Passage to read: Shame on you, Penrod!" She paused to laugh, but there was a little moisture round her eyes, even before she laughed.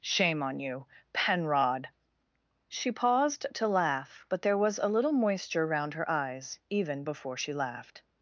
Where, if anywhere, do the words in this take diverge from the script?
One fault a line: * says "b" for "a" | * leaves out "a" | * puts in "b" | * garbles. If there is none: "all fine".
all fine